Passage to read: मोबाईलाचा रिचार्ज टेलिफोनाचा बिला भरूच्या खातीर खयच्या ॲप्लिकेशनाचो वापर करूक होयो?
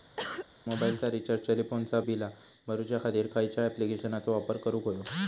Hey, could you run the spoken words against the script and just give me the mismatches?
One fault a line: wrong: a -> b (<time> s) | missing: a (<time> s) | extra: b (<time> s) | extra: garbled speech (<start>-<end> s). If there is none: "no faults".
no faults